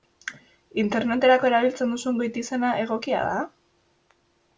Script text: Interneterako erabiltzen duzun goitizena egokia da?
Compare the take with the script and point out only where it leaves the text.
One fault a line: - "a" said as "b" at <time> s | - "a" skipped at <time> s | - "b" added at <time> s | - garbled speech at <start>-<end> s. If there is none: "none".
none